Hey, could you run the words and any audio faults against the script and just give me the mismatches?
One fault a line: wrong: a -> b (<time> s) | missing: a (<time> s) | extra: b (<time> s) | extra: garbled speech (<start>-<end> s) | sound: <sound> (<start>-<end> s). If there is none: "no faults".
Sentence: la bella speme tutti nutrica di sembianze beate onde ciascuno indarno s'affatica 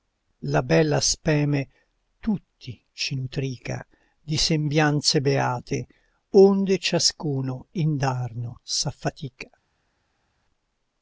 extra: ci (2.9 s)